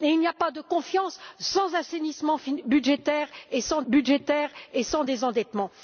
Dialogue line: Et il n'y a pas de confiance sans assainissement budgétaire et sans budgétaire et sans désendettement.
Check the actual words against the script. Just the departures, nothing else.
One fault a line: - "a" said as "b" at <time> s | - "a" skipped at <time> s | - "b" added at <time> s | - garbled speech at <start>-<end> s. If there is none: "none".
none